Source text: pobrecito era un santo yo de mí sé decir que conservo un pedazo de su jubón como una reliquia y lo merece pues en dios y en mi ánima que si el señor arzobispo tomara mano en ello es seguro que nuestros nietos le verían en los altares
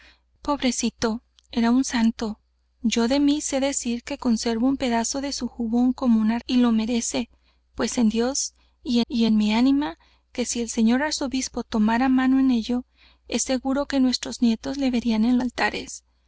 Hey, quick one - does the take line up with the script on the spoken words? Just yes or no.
no